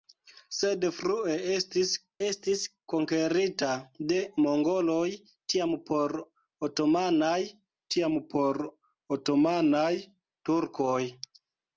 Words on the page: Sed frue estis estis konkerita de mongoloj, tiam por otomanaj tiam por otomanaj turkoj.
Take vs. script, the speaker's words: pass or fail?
pass